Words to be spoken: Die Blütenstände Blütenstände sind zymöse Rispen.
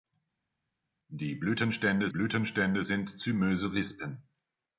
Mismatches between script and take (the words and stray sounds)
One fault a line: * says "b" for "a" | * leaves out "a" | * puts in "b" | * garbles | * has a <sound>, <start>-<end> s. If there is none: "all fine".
all fine